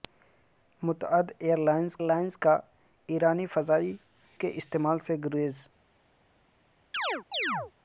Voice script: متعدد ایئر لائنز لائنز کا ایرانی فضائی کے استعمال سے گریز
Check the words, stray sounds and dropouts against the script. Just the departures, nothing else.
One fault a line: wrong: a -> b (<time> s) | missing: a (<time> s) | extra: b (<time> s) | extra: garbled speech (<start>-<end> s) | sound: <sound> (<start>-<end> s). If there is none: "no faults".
sound: chirp (6.9-7.7 s)